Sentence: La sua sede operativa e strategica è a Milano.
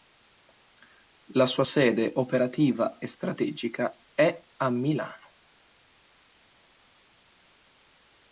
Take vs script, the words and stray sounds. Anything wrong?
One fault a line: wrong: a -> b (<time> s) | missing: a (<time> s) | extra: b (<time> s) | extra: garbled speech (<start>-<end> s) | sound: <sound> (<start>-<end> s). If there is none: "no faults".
no faults